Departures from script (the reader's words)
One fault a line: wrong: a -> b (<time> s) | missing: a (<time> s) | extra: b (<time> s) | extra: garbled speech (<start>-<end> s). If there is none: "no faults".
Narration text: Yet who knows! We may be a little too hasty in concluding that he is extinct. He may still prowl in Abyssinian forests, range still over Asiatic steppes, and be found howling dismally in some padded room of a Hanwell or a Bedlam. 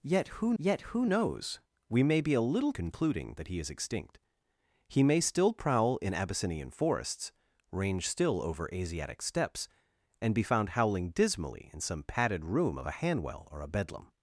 extra: yet who (0.6 s)
missing: too hasty in (2.7 s)